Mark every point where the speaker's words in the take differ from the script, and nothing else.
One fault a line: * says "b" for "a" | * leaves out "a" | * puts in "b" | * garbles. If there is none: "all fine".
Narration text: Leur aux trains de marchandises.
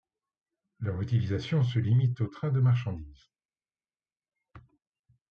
* puts in "utilisation se limite"